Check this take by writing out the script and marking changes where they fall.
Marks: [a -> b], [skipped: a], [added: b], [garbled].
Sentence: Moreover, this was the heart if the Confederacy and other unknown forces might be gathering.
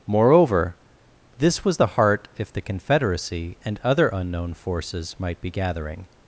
Moreover, this was the heart if the Confederacy and other unknown forces might be gathering.